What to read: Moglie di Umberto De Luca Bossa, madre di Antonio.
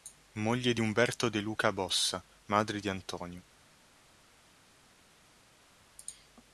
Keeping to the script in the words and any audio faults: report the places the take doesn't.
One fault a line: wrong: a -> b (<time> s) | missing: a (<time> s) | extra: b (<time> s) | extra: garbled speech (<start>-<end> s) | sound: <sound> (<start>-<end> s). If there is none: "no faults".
no faults